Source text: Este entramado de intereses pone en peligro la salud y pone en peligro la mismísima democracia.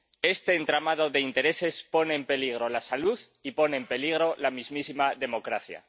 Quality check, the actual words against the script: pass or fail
pass